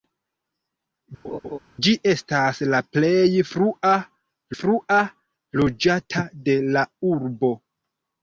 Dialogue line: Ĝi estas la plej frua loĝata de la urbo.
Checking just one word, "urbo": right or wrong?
right